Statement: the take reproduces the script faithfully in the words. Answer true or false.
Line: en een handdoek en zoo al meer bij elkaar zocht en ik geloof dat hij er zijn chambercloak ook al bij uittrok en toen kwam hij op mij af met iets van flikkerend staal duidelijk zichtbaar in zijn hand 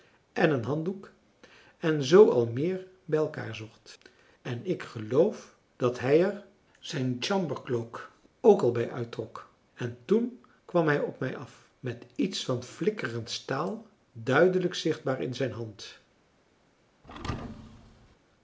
true